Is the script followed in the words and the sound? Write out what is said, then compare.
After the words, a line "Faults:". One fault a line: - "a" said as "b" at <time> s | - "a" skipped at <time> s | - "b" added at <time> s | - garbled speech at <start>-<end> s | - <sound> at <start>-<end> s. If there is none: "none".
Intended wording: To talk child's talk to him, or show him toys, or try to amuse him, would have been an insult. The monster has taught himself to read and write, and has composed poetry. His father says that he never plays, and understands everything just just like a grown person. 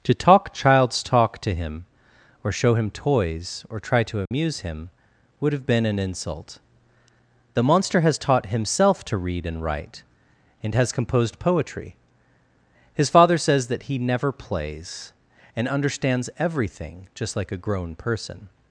To talk child's talk to him, or show him toys, or try to amuse him, would have been an insult. The monster has taught himself to read and write, and has composed poetry. His father says that he never plays, and understands everything just like a grown person.
Faults:
- dropout at 4.3-4.3 s
- "just" skipped at 17.4 s